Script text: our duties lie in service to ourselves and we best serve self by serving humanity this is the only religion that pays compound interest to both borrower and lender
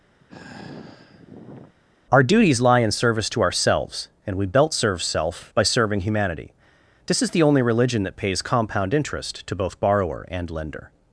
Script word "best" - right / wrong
wrong